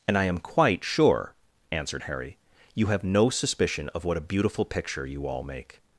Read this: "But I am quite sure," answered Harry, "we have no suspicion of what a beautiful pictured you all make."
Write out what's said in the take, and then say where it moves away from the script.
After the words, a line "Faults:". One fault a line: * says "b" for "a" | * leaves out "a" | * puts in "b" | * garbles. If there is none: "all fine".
"And I am quite sure," answered Harry, "you have no suspicion of what a beautiful picture you all make."
Faults:
* says "And" for "But"
* says "you" for "we"
* says "picture" for "pictured"